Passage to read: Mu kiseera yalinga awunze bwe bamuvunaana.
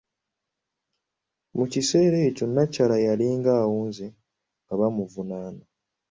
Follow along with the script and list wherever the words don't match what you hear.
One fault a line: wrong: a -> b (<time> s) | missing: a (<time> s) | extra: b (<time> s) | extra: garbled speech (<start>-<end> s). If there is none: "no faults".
extra: ekyo nnakyala (2.3 s)
wrong: bwe -> nga (4.6 s)